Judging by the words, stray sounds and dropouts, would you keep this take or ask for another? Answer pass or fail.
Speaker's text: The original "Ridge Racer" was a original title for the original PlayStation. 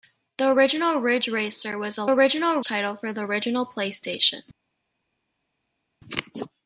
pass